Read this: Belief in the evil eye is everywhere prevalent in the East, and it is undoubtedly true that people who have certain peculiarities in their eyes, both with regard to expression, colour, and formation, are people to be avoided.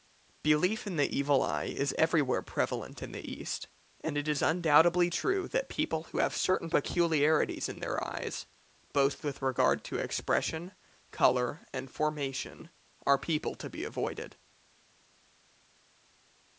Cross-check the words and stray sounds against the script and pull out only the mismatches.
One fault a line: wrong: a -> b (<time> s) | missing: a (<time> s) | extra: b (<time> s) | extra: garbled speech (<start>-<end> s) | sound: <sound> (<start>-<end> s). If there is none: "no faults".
no faults